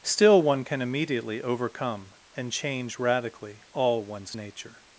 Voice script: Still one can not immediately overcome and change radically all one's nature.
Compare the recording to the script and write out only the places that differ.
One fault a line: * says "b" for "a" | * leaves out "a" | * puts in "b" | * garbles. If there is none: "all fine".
* leaves out "not"